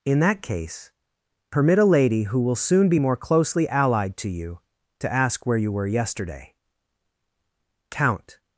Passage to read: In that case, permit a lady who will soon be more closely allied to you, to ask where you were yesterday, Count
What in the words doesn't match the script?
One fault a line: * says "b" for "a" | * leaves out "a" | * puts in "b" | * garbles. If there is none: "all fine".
all fine